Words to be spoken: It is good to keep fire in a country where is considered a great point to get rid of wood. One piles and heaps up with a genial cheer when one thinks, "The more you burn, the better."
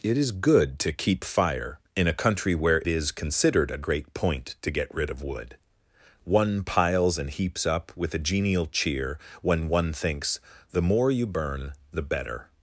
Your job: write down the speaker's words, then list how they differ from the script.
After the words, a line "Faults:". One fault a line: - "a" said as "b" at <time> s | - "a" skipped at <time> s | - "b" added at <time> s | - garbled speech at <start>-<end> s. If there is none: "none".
It is good to keep fire in a country where is considered a great point to get rid of wood. One piles and heaps up with a genial cheer when one thinks, "The more you burn, the better."
Faults:
none